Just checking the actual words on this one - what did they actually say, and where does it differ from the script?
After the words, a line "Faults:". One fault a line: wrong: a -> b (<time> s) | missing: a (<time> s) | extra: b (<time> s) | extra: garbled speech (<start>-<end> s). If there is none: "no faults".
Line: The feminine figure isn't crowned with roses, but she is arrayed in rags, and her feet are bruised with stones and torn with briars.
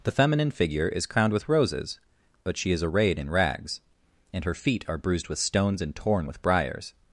The feminine figure is crowned with roses, but she is arrayed in rags, and her feet are bruised with stones and torn with briars.
Faults:
wrong: isn't -> is (0.9 s)